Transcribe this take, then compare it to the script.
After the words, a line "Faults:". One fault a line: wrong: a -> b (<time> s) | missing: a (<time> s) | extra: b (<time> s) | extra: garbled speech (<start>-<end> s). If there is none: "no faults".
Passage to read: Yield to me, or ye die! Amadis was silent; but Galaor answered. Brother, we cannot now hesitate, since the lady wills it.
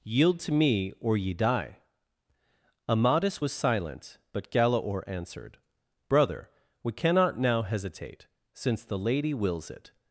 Yield to me, or ye die! Amadis was silent; but Galaor answered. Brother, we cannot now hesitate, since the lady wills it.
Faults:
no faults